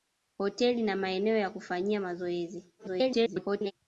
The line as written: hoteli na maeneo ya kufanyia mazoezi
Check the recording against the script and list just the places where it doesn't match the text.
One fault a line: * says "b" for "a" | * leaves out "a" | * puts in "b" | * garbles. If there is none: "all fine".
* garbles